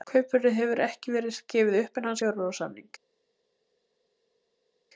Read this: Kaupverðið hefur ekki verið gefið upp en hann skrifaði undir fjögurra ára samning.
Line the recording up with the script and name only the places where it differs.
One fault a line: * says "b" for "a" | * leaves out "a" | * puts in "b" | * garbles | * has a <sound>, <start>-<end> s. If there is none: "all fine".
* leaves out "skrifaði undir"